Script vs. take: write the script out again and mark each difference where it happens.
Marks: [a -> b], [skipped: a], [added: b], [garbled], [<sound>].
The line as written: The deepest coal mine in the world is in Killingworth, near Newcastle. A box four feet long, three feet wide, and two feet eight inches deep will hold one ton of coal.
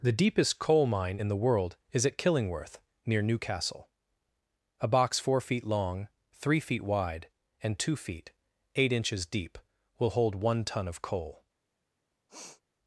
The deepest coal mine in the world is [in -> at] Killingworth, near Newcastle. A box four feet long, three feet wide, and two feet eight inches deep will hold one ton of coal. [sniff]